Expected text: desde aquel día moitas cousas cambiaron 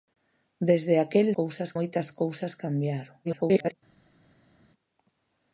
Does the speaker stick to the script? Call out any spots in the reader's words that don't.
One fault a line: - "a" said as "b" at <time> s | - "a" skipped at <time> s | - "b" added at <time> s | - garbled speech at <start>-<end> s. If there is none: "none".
- "día" said as "cousas" at 1.4 s
- garbled speech at 3.2-3.8 s